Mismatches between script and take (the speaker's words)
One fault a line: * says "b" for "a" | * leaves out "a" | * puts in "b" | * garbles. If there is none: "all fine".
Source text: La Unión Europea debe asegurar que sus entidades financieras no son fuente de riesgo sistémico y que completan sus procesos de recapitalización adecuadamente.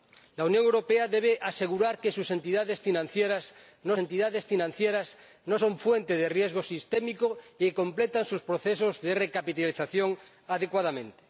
* puts in "entidades financieras no"